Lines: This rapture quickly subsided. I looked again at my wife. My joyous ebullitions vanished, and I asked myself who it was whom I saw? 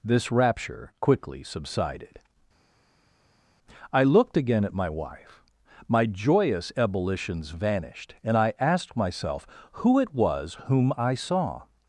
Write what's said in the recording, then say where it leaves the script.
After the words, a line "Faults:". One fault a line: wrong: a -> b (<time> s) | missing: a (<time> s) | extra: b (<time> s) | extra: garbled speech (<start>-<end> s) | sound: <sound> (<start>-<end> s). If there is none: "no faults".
This rapture quickly subsided. I looked again at my wife. My joyous ebullitions vanished, and I asked myself who it was whom I saw?
Faults:
no faults